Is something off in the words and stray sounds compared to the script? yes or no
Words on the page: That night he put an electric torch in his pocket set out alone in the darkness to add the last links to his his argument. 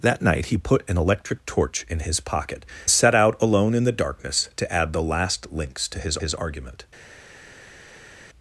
no